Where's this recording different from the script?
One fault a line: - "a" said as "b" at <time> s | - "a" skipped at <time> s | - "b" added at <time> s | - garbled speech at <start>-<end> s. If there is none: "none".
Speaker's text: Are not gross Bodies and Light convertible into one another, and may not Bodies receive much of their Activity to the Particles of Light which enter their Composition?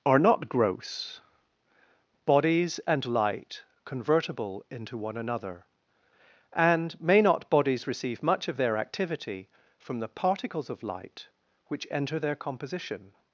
- "to" said as "from" at 9.8 s